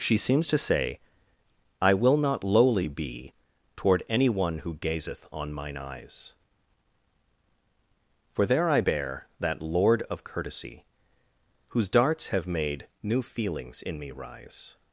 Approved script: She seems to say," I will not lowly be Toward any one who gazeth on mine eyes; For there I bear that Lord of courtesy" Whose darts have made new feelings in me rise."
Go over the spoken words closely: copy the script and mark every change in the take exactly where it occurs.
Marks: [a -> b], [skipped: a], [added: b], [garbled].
She seems to say," I will not lowly be Toward any one who gazeth on mine eyes; For there I bear that Lord of courtesy" Whose darts have made new feelings in me rise."